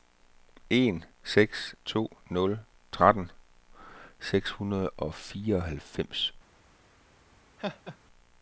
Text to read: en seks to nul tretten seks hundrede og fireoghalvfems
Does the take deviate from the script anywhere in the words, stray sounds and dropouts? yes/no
yes